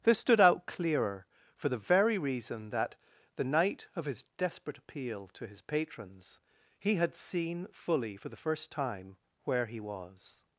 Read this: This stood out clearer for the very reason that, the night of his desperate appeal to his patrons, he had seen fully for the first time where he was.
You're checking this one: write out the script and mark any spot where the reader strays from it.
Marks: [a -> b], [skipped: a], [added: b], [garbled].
This stood out clearer for the very reason that, the night of his desperate appeal to his patrons, he had seen fully for the first time where he was.